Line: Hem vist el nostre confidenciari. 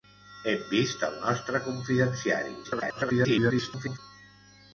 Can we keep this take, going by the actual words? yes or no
no